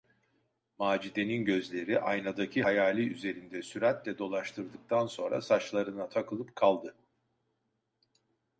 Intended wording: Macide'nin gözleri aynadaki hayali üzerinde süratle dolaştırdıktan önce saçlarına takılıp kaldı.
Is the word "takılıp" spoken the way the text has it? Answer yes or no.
yes